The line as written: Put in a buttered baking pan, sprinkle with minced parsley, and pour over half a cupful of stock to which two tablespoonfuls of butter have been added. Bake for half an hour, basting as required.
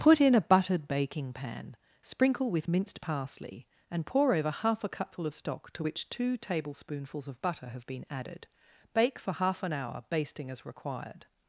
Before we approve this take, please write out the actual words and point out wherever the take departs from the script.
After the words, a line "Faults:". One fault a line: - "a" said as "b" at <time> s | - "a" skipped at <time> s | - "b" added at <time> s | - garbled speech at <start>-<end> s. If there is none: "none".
Put in a buttered baking pan, sprinkle with minced parsley, and pour over half a cupful of stock to which two tablespoonfuls of butter have been added. Bake for half an hour, basting as required.
Faults:
none